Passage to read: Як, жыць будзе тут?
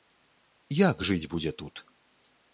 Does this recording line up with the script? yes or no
yes